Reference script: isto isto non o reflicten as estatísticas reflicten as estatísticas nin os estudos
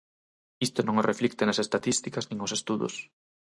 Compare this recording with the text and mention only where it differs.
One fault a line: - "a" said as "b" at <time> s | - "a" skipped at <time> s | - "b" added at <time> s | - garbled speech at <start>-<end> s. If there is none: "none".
- "isto" skipped at 0.8 s
- "reflicten as estatísticas" skipped at 2.2 s